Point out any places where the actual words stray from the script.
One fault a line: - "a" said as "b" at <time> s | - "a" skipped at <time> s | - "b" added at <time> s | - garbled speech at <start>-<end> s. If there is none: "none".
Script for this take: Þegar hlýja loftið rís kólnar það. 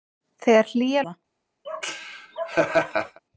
- "loftið rís kólnar" skipped at 1.0 s